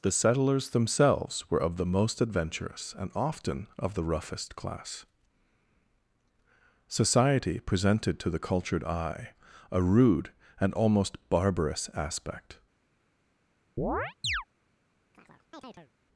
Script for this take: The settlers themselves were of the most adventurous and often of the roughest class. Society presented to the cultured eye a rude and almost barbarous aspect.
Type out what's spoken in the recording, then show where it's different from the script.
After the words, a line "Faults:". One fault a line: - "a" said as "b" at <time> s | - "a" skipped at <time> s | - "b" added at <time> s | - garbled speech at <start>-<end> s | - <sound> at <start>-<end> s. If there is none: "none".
The settlers themselves were of the most adventurous and often of the roughest class. Society presented to the cultured eye a rude and almost barbarous aspect.
Faults:
- chirp at 13.8-14.4 s
- chirp at 15.1-15.9 s